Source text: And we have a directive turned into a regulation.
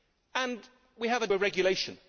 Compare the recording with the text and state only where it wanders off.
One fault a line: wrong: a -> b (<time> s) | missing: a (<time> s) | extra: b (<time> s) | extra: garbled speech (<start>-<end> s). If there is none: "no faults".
missing: directive turned into (1.3 s)